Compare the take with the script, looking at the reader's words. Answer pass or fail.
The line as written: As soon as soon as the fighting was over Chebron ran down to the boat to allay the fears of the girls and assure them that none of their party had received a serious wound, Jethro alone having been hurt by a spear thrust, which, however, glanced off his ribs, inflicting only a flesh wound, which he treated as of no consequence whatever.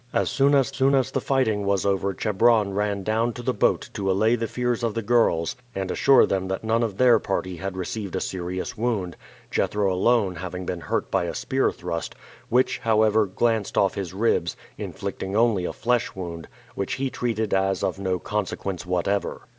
pass